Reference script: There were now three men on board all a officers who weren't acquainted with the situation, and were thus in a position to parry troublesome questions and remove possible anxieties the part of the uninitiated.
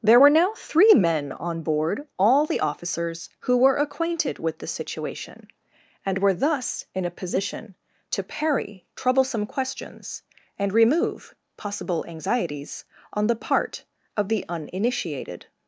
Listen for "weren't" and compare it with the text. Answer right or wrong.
wrong